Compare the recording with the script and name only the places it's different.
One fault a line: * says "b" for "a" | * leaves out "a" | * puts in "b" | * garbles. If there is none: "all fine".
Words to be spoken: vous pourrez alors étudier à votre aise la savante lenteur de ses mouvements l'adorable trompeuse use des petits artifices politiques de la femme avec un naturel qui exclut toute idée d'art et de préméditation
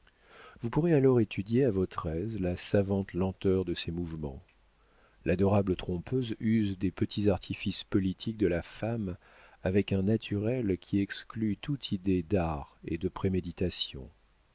all fine